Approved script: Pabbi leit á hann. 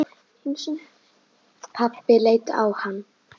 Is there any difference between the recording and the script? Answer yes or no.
no